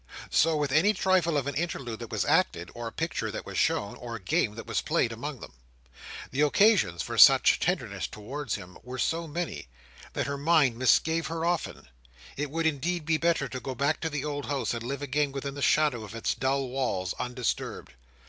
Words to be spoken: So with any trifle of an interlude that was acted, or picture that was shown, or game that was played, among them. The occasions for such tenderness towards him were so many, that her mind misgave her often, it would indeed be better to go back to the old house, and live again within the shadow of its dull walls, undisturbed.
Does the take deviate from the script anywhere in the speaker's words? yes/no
no